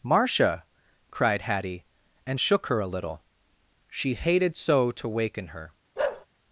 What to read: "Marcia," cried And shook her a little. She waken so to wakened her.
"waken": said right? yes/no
no